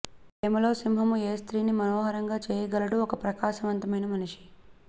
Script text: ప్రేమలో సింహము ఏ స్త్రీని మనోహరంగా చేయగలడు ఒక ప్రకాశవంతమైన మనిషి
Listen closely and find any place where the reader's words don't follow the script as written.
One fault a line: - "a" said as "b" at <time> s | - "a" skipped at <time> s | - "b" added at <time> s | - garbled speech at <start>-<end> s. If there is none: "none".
none